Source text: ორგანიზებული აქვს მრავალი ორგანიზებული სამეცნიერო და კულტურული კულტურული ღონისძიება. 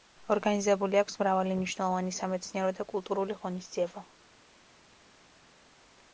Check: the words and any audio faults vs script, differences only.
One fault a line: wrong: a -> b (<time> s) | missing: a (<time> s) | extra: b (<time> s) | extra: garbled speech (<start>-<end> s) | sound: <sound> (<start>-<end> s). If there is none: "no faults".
wrong: ორგანიზებული -> მნიშვნელოვანი (1.6 s)
missing: კულტურული (3.4 s)